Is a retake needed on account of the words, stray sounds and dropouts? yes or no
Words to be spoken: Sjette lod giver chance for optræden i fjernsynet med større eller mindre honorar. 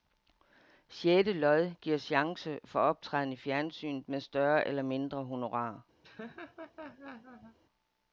yes